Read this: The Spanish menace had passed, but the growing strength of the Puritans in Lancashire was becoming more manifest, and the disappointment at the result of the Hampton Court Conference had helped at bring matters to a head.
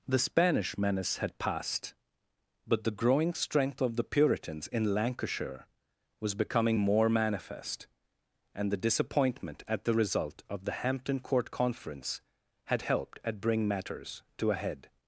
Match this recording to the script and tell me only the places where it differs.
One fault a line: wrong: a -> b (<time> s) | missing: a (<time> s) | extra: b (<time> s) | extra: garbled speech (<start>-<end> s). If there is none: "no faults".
no faults